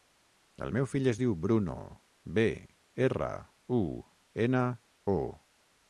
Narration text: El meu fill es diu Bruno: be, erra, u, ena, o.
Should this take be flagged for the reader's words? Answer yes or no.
no